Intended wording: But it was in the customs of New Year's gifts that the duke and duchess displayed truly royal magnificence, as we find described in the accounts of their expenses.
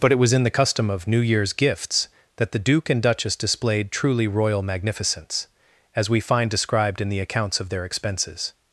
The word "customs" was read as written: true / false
false